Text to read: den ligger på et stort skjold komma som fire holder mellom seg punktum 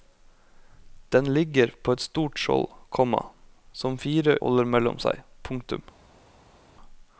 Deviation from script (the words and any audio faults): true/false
false